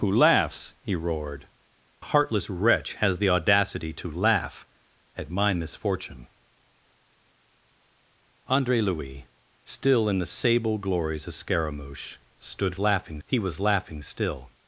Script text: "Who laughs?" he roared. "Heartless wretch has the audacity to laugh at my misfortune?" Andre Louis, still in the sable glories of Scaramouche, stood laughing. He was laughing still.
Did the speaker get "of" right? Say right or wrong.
right